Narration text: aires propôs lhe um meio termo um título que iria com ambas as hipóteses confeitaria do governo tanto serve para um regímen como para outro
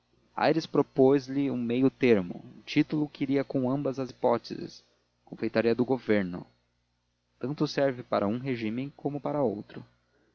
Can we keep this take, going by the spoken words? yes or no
yes